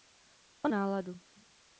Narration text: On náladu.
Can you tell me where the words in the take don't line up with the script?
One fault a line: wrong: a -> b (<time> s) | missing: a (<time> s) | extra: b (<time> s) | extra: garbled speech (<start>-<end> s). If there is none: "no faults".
no faults